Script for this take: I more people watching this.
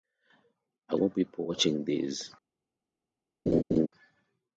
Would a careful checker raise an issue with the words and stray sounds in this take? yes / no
yes